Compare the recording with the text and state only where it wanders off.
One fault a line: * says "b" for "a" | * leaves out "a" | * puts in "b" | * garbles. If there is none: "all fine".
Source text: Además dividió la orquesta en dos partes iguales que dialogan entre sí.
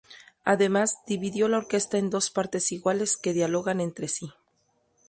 all fine